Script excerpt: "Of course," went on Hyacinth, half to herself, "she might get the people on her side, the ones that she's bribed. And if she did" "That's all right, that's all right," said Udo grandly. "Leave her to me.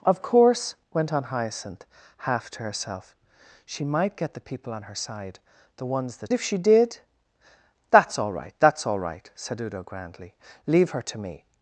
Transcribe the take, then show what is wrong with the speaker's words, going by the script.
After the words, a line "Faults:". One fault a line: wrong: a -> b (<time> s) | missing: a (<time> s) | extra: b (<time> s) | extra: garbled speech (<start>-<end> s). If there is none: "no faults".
"Of course," went on Hyacinth, half to herself, "she might get the people on her side, the ones that if she did" "That's all right, that's all right," said Udo grandly. "Leave her to me.
Faults:
missing: she's bribed And (6.3 s)